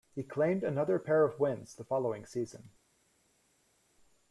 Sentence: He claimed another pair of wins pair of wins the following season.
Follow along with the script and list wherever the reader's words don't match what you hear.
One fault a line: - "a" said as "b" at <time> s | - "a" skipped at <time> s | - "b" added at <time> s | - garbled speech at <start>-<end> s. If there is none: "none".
- "pair of wins" skipped at 1.7 s